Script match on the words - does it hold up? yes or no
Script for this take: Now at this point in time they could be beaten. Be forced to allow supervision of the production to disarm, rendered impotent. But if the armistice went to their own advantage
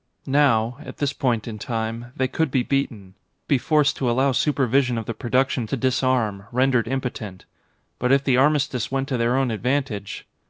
yes